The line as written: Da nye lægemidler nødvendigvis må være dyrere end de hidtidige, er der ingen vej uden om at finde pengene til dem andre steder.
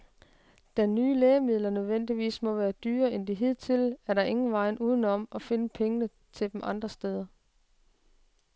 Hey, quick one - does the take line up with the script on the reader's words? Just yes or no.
yes